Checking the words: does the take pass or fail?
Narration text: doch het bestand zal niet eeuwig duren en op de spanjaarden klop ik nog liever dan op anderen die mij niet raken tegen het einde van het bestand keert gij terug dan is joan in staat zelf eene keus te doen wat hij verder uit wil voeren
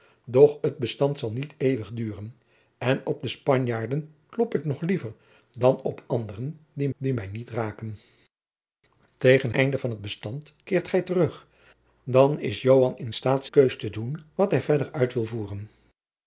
fail